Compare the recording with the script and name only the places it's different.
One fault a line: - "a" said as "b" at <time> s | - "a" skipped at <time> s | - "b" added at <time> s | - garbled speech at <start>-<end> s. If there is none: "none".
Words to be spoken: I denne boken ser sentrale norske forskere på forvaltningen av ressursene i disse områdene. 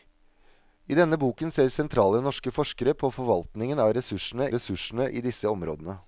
- "ressursene" added at 4.5 s